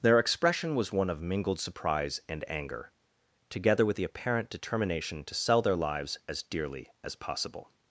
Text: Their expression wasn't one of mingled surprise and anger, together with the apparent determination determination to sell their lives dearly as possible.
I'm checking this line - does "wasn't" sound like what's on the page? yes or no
no